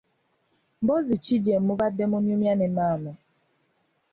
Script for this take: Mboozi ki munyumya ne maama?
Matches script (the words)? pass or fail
fail